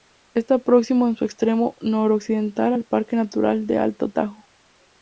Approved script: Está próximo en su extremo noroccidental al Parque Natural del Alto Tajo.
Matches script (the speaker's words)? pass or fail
pass